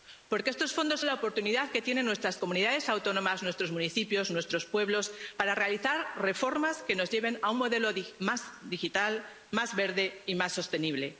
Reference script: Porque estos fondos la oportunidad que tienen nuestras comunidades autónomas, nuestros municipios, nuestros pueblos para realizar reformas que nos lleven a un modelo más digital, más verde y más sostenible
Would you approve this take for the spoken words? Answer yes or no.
yes